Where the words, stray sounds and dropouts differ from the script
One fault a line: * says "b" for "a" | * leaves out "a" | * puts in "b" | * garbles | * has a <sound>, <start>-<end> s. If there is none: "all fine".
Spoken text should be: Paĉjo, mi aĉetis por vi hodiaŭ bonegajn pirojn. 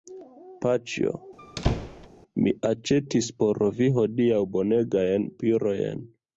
* has a squeak, 1.4-2.1 s